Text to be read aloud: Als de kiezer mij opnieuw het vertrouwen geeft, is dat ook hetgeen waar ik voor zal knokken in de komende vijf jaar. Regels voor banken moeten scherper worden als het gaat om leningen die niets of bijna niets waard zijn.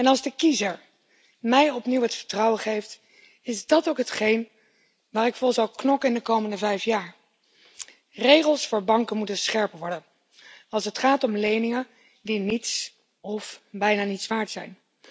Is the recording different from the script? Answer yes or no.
no